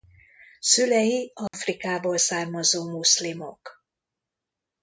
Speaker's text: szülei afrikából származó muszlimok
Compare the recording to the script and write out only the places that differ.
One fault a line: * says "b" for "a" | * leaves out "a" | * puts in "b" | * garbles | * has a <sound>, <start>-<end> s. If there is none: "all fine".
* has a dropout, 1.5-1.5 s